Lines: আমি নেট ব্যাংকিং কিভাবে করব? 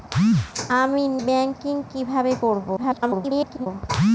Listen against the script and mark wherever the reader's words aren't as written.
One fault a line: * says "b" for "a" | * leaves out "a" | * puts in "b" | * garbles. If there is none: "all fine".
* leaves out "নেট"
* garbles